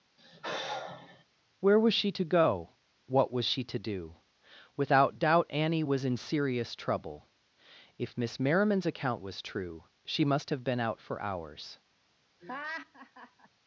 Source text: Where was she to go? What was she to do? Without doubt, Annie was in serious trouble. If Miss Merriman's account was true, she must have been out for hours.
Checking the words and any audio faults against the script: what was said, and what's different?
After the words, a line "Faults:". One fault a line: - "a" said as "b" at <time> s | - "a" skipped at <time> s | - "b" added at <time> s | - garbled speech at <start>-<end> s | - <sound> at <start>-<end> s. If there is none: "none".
Where was she to go? What was she to do? Without doubt, Annie was in serious trouble. If Miss Merriman's account was true, she must have been out for hours.
Faults:
- sigh at 0.2-1.2 s
- laugh at 12.4-13.5 s